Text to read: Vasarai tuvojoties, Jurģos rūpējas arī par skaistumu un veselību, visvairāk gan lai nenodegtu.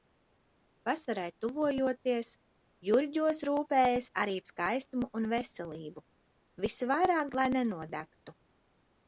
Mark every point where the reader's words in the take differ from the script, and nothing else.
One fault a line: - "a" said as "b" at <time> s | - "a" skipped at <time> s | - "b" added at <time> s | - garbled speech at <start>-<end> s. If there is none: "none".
- "par" skipped at 4.4 s
- "gan" skipped at 7.3 s